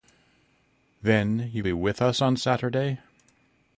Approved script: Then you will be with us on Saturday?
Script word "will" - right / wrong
wrong